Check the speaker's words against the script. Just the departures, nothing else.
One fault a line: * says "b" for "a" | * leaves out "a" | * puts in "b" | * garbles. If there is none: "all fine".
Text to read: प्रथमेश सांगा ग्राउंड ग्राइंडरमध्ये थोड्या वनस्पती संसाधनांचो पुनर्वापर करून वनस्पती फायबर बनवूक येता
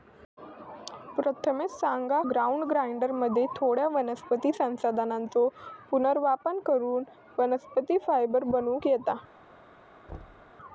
all fine